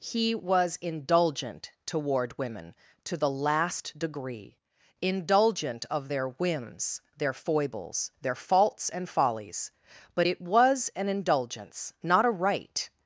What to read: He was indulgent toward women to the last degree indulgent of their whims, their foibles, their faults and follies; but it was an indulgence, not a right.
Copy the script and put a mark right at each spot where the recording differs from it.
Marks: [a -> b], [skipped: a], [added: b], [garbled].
He was indulgent toward women to the last degree indulgent of their whims, their foibles, their faults and follies; but it was an indulgence, not a right.